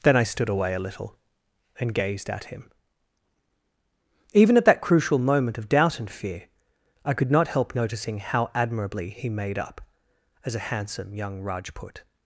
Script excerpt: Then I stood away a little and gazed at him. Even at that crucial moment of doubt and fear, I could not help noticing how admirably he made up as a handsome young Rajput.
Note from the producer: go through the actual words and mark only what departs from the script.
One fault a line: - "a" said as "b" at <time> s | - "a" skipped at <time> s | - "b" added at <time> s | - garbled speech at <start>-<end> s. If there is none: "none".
none